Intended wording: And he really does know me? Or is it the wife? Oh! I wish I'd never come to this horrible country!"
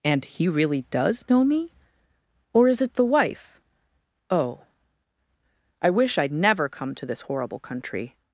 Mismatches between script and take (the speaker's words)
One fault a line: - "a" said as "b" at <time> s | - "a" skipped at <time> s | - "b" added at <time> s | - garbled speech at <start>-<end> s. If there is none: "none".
none